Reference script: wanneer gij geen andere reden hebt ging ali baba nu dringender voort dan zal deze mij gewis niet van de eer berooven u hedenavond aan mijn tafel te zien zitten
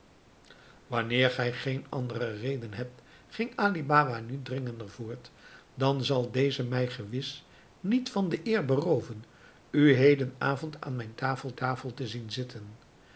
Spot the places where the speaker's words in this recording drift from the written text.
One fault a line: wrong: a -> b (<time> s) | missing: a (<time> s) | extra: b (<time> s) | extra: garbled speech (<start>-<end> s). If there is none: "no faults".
extra: tafel (11.5 s)